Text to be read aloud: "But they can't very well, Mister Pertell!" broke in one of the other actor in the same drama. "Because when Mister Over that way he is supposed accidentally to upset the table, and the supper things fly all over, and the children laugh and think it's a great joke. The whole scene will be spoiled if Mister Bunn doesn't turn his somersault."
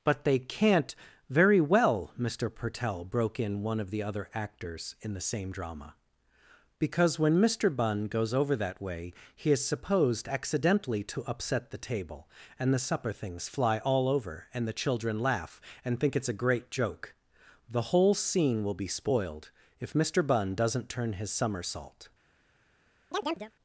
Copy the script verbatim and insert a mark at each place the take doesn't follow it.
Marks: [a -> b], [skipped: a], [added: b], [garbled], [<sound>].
"But they can't very well, Mister Pertell!" broke in one of the other [actor -> actors] in the same drama. "Because when Mister [added: Bunn goes] Over that way he is supposed accidentally to upset the table, and the supper things fly all over, and the children laugh and think it's a great joke. The whole scene will be spoiled if Mister Bunn doesn't turn his somersault." [chirp]